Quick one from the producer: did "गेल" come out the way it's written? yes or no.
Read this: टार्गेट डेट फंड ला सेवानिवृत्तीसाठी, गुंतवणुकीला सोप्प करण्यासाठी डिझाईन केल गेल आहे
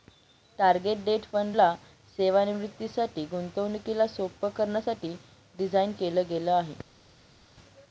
yes